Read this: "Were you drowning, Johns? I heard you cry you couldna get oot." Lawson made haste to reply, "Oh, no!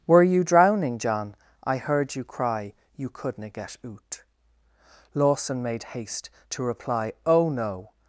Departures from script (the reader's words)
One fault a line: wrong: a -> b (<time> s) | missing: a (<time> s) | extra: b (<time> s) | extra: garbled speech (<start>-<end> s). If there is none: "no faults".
wrong: Johns -> John (1.0 s)